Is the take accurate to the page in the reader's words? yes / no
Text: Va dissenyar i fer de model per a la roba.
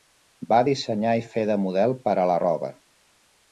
yes